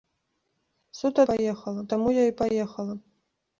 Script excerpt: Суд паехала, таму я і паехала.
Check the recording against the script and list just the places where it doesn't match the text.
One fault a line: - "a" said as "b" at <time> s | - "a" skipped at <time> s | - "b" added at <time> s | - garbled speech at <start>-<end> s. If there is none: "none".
none